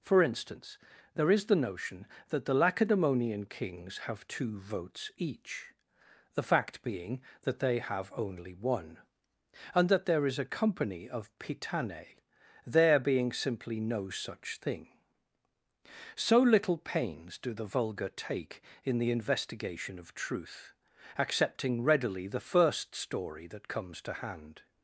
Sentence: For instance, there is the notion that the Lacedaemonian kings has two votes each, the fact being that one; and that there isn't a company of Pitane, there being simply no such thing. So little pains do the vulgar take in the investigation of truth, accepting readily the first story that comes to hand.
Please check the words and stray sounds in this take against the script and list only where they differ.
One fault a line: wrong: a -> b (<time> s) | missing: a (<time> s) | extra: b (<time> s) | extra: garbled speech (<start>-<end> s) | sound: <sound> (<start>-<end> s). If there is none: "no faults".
wrong: has -> have (4.0 s)
extra: they have only (7.6 s)
wrong: isn't -> is (10.3 s)